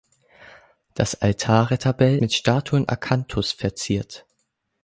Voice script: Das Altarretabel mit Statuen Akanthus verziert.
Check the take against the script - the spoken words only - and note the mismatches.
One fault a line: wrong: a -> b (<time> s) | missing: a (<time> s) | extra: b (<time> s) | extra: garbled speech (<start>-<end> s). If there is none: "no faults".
no faults